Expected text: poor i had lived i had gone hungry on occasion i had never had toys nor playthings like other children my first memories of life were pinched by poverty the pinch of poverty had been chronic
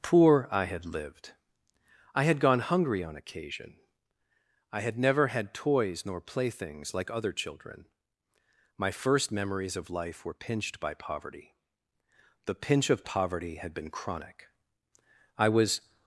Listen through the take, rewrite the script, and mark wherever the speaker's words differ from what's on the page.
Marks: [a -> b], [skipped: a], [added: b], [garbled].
poor i had lived i had gone hungry on occasion i had never had toys nor playthings like other children my first memories of life were pinched by poverty the pinch of poverty had been chronic [added: i was]